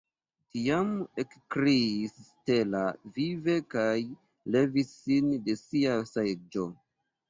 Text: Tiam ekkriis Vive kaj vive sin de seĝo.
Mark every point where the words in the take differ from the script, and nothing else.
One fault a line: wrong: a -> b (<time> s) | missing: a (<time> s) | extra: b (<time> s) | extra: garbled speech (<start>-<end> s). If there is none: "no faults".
extra: Stella (2.3 s)
wrong: vive -> levis (4.6 s)
extra: sia (5.7 s)